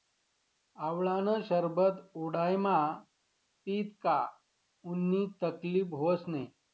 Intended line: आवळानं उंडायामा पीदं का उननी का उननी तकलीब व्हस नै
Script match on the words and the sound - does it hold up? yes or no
no